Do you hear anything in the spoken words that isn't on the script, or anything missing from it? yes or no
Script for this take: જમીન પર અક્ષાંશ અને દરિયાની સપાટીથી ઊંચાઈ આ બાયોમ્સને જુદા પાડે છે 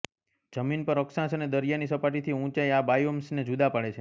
no